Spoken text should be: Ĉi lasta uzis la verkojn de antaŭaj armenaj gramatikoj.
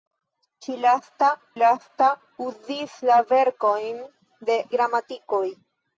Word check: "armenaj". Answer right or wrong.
wrong